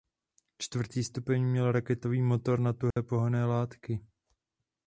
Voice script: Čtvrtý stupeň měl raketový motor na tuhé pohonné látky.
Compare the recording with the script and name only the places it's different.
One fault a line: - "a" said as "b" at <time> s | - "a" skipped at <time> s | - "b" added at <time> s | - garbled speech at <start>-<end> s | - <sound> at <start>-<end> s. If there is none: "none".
- dropout at 2.9-3.0 s